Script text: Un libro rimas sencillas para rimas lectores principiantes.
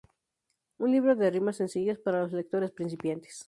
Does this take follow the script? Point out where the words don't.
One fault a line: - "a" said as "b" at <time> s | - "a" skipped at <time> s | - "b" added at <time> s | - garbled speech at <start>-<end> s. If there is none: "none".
- "de" added at 1.1 s
- "rimas" said as "los" at 2.2 s